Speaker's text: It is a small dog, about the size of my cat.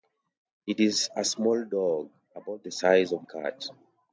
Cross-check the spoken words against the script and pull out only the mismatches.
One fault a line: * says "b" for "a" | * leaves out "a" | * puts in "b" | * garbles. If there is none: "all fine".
* leaves out "my"